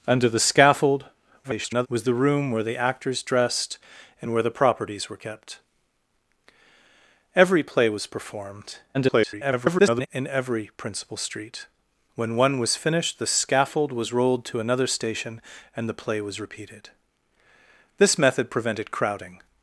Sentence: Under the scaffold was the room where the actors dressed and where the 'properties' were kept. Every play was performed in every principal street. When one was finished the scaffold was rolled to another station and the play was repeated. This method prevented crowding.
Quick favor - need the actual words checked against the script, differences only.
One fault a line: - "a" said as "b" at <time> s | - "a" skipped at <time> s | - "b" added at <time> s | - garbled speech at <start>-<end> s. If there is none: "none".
- garbled speech at 1.4-1.9 s
- garbled speech at 8.9-10.1 s